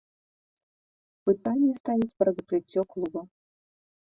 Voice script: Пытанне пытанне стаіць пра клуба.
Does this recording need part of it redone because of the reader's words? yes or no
yes